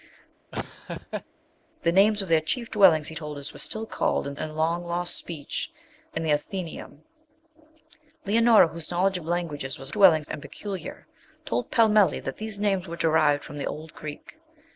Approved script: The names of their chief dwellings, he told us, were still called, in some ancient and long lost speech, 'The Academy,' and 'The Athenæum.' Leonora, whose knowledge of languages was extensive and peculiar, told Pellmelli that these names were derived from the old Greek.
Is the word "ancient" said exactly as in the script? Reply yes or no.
no